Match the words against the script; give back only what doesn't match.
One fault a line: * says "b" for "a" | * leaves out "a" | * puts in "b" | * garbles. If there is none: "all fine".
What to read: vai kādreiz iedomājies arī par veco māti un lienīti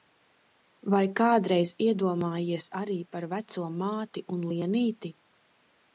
all fine